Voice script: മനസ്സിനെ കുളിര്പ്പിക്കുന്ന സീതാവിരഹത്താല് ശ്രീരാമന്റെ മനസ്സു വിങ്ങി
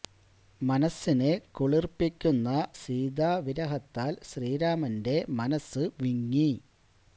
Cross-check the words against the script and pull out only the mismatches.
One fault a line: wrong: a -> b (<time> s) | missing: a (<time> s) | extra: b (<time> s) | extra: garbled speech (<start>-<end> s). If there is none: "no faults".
no faults